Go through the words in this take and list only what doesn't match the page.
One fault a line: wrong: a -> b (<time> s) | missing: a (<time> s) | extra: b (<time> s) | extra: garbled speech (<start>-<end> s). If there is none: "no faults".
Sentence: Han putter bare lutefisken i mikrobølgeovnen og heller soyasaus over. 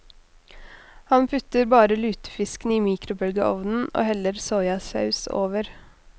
no faults